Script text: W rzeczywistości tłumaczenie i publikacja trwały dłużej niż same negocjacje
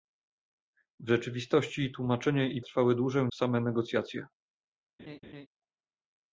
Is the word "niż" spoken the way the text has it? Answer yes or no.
no